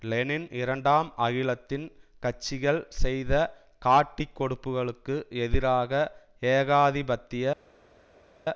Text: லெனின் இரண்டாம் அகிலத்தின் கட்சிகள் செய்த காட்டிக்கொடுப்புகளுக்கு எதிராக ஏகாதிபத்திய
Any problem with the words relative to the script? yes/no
no